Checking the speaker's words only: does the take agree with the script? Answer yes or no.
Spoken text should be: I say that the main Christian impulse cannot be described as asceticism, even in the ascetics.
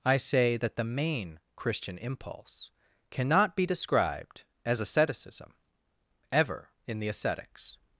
no